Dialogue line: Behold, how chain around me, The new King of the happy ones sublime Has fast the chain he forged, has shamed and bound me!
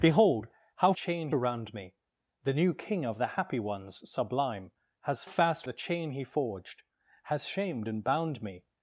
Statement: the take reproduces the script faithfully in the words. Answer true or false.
true